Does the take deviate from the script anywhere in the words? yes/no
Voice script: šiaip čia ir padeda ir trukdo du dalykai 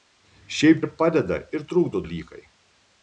yes